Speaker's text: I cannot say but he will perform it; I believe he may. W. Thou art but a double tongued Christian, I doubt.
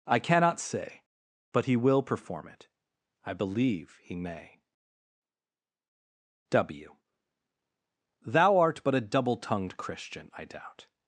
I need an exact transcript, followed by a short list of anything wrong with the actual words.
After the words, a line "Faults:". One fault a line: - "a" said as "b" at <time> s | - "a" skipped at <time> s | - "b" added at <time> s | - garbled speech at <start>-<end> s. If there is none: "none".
I cannot say but he will perform it; I believe he may. W. Thou art but a double tongued Christian, I doubt.
Faults:
none